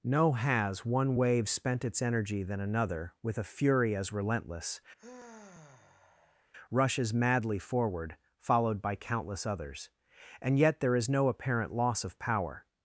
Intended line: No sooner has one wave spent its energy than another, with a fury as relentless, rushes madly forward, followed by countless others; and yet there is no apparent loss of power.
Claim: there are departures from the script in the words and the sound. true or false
true